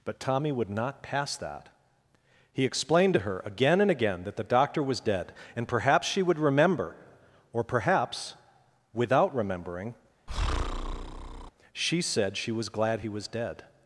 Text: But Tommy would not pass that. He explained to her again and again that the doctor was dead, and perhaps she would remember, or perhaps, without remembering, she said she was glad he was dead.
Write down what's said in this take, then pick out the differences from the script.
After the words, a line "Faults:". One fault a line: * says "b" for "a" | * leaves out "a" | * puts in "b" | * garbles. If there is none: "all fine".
But Tommy would not pass that. He explained to her again and again that the doctor was dead, and perhaps she would remember, or perhaps, without remembering, she said she was glad he was dead.
Faults:
all fine